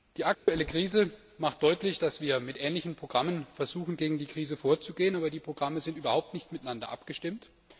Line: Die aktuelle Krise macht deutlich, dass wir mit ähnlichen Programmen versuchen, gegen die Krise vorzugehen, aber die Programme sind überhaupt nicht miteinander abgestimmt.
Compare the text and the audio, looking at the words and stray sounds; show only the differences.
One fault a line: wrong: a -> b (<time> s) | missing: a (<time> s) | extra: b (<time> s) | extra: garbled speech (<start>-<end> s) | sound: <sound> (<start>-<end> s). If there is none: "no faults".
sound: dropout (0.3-0.5 s)